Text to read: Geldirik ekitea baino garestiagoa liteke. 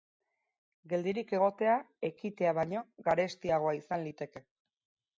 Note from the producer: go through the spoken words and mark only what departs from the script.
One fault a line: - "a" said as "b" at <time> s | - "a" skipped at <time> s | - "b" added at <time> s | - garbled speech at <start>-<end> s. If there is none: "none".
- "egotea" added at 1.4 s
- "izan" added at 3.8 s